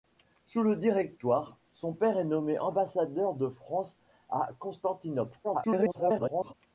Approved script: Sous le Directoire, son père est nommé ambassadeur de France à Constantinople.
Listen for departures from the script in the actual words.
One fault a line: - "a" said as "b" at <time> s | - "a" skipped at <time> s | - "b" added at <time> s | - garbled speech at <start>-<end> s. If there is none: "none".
- garbled speech at 5.4-6.5 s